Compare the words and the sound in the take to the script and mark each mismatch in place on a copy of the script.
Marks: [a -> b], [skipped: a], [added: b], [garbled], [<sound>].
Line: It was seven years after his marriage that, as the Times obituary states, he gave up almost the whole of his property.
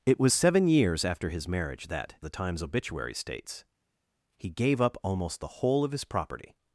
It was seven years after his marriage that, [skipped: as] the Times obituary states, he gave up almost the whole of his property.